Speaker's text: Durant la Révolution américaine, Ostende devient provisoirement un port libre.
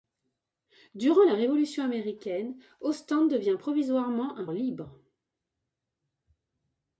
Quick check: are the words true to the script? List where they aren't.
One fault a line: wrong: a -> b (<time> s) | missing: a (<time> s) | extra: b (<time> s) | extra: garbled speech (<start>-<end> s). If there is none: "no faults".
missing: port (4.5 s)